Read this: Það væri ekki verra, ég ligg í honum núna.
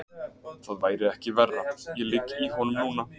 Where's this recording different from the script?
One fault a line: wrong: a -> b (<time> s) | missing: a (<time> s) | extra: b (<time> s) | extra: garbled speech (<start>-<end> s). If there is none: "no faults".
no faults